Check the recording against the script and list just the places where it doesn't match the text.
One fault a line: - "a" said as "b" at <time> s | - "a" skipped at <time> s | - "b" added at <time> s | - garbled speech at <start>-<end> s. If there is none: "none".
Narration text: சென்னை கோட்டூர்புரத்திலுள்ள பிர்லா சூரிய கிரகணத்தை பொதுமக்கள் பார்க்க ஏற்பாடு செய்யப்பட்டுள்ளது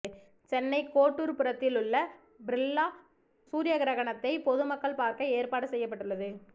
none